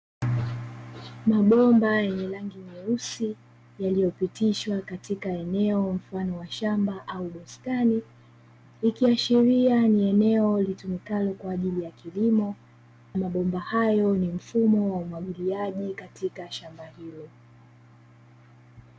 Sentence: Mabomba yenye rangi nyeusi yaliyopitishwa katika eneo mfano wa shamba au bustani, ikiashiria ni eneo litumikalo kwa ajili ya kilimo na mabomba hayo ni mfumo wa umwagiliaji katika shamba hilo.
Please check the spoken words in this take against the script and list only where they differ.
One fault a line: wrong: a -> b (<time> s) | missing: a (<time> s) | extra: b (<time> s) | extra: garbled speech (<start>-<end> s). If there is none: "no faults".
missing: na (12.6 s)